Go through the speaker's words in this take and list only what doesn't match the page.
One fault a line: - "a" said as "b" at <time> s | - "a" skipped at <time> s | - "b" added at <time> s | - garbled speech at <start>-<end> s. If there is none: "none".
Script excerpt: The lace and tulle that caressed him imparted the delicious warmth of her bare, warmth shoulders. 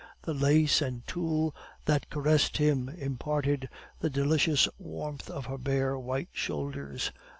- "warmth" said as "white" at 6.0 s